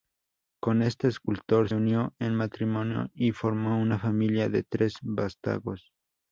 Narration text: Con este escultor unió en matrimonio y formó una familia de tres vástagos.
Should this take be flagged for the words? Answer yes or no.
no